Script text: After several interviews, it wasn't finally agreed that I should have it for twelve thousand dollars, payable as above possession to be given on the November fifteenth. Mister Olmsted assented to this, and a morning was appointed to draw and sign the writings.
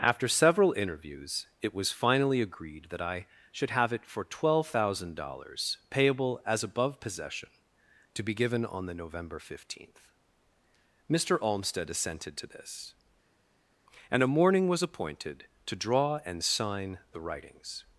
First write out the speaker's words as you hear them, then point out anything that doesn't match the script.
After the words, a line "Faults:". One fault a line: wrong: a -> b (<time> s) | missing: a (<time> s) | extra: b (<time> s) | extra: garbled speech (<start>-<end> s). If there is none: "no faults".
After several interviews, it was finally agreed that I should have it for twelve thousand dollars, payable as above possession to be given on the November fifteenth. Mister Olmsted assented to this, and a morning was appointed to draw and sign the writings.
Faults:
wrong: wasn't -> was (1.8 s)